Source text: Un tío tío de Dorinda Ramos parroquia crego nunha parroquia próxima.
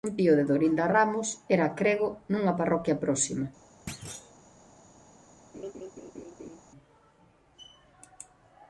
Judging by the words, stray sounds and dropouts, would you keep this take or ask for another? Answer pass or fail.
fail